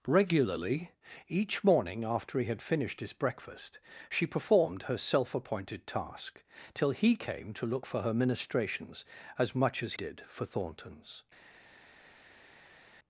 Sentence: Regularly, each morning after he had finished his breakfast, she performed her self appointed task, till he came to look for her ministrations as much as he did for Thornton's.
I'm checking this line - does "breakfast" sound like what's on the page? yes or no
yes